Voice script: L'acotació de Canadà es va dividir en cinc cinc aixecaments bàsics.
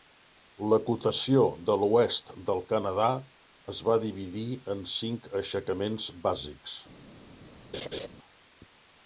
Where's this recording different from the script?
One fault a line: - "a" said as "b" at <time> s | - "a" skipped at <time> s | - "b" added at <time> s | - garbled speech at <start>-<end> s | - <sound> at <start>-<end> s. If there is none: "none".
- "l'Oest del" added at 1.8 s
- "cinc" skipped at 5.3 s
- laugh at 7.7-8.1 s